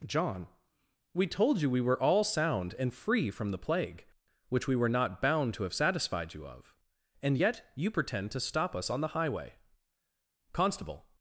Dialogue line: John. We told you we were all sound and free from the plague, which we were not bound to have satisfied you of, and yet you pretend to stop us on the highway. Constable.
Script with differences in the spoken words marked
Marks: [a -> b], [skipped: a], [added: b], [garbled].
John. We told you we were all sound and free from the plague, which we were not bound to have satisfied you of, and yet you pretend to stop us on the highway. Constable.